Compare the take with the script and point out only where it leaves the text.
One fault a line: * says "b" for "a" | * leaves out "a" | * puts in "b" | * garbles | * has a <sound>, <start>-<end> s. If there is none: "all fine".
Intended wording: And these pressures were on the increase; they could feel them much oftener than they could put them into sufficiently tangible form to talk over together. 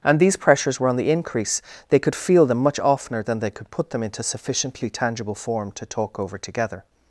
all fine